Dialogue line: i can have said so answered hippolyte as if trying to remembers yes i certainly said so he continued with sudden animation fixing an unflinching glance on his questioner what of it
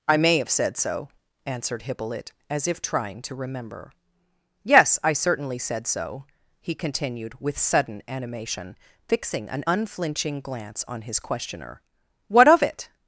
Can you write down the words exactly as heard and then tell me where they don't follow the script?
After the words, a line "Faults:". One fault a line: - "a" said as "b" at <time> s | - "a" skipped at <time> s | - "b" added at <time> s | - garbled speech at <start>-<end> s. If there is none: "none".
i may have said so answered hippolyte as if trying to remember yes i certainly said so he continued with sudden animation fixing an unflinching glance on his questioner what of it
Faults:
- "can" said as "may" at 0.2 s
- "remembers" said as "remember" at 3.4 s